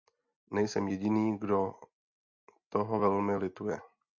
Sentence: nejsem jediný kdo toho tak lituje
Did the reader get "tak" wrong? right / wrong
wrong